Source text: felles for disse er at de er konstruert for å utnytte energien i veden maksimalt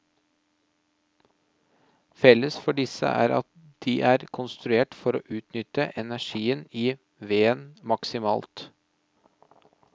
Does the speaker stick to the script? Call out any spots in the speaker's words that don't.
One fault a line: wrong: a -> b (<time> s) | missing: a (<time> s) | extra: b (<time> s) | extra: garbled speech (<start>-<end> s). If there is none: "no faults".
no faults